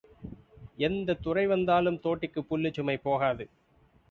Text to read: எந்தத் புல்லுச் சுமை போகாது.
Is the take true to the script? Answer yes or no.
no